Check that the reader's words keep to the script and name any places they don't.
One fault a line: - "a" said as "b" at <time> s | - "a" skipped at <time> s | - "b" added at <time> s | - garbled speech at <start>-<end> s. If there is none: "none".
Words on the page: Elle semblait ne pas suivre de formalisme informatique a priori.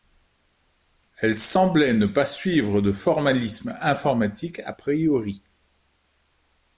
none